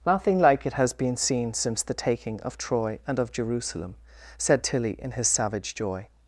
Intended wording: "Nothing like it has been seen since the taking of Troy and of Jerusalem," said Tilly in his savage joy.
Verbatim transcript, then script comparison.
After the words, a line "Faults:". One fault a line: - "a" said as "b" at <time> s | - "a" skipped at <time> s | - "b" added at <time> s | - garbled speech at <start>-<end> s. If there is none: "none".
"Nothing like it has been seen since the taking of Troy and of Jerusalem," said Tilly in his savage joy.
Faults:
none